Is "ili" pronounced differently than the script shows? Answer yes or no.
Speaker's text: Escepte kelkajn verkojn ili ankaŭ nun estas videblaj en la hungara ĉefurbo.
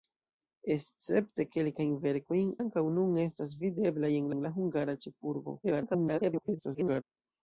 yes